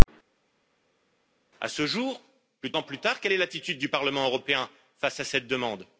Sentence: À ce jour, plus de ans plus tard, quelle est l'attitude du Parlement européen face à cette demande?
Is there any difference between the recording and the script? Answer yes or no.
no